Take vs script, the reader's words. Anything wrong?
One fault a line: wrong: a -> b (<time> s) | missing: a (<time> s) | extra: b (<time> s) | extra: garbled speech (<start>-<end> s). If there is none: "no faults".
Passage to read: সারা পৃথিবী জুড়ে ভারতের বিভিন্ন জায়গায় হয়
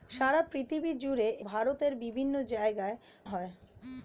no faults